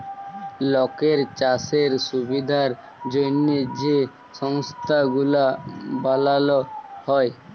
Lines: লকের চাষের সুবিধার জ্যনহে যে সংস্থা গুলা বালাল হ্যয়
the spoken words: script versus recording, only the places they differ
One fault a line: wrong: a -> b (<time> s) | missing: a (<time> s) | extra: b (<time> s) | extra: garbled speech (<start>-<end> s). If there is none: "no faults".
no faults